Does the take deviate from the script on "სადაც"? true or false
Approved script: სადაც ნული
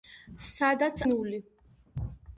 false